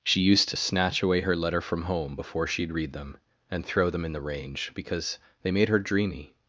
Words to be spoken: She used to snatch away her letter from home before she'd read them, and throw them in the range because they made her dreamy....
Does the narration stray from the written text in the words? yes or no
no